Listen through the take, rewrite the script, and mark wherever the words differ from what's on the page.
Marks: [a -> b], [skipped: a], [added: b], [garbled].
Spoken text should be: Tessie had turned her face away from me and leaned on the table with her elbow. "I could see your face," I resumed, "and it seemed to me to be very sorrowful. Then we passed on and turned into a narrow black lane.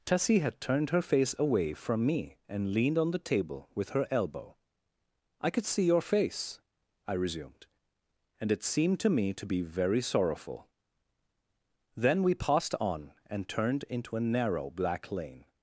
Tessie had turned her face away from me and leaned on the table with her elbow. "I could see your face," I resumed, "and it seemed to me to be very sorrowful. Then we passed on and turned into a narrow black lane.